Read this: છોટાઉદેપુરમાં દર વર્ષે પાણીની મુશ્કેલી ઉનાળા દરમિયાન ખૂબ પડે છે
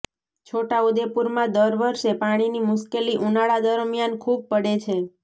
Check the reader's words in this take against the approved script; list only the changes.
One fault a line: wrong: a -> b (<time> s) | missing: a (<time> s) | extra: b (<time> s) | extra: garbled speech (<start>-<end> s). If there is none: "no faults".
no faults